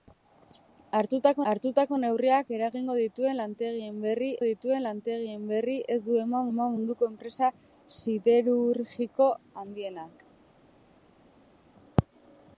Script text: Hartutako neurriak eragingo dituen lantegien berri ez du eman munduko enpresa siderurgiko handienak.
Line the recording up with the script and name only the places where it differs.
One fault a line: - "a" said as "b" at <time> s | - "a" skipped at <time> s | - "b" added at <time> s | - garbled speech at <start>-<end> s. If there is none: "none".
- "hartutako" added at 1.5 s
- "dituen lantegien berri" added at 4.4 s
- "eman" added at 6.5 s